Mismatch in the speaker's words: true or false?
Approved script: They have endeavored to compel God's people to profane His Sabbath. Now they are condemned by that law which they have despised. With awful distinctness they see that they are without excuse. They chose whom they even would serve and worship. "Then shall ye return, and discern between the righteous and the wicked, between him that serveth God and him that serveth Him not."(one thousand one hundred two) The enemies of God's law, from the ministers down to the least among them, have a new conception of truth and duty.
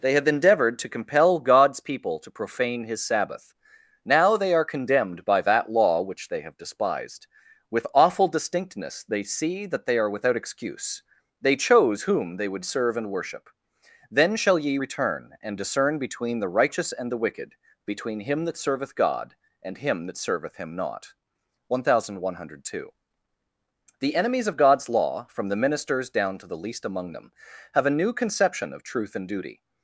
true